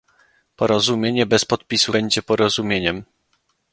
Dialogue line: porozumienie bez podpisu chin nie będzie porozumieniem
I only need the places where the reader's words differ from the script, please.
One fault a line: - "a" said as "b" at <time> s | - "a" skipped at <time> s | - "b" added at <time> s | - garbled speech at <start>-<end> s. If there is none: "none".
- "chin nie" skipped at 1.9 s